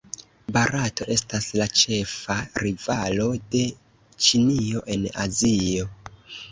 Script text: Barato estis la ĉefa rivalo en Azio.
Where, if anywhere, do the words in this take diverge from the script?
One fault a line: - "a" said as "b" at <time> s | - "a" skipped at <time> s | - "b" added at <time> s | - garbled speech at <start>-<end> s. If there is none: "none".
- "estis" said as "estas" at 1.1 s
- "de Ĉinio" added at 3.5 s